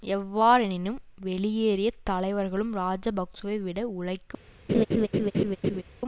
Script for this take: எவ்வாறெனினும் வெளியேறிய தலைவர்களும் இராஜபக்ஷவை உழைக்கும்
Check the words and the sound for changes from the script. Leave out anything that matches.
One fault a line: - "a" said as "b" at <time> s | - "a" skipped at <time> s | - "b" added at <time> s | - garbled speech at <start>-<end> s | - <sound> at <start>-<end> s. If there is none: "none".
- "விட" added at 3.6 s
- laugh at 4.7-5.8 s